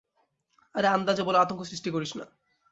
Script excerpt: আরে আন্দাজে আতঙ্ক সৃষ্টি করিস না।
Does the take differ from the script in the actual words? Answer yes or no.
yes